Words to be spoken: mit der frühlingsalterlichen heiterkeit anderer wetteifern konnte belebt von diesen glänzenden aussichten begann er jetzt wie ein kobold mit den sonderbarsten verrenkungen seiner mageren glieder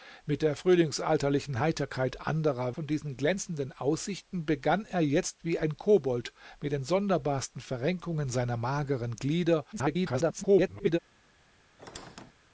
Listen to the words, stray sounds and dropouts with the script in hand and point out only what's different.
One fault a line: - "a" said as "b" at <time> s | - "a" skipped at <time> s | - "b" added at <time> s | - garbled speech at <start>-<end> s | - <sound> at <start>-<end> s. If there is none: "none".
- "wetteifern konnte belebt" skipped at 2.7 s
- garbled speech at 9.7-11.0 s
- squeak at 11.8-12.3 s